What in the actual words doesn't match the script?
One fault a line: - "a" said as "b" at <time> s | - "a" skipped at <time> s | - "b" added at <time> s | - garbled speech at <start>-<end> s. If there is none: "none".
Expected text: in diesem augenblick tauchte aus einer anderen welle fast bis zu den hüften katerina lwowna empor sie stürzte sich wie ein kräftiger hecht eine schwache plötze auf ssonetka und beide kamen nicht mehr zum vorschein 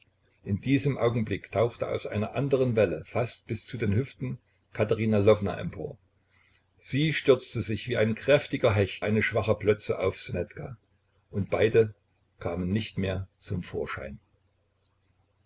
none